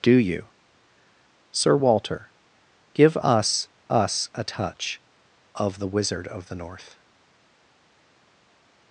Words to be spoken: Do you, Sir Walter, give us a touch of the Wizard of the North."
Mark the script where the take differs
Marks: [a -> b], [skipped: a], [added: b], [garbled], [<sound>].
Do you, Sir Walter, give us [added: us] a touch of the Wizard of the North."